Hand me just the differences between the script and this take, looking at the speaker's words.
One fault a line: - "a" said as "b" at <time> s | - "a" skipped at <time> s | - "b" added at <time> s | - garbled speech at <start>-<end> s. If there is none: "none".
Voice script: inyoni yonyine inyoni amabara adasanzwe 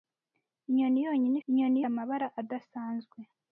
none